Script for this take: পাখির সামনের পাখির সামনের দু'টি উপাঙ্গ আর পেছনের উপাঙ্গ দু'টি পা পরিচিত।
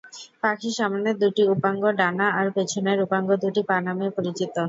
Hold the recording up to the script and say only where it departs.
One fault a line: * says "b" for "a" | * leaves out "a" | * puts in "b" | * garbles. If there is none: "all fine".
* leaves out "পাখির সামনের"
* puts in "ডানা"
* puts in "নামে"